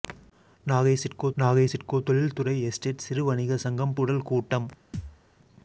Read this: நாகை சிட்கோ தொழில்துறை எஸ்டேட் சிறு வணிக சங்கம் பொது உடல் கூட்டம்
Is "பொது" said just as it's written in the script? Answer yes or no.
no